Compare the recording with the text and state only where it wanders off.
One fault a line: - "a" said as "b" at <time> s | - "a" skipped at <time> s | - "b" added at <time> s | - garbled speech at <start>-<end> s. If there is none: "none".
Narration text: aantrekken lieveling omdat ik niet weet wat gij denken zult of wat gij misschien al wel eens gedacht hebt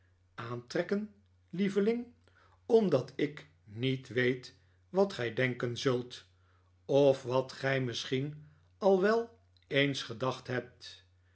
none